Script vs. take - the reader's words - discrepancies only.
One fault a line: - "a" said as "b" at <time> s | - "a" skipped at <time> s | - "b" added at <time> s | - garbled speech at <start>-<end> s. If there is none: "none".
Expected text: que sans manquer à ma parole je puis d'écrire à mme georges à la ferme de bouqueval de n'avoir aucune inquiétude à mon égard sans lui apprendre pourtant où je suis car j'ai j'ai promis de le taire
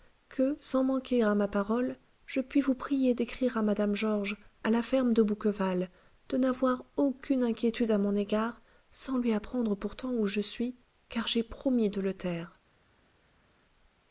- "vous prier" added at 2.6 s
- "j'ai" skipped at 11.4 s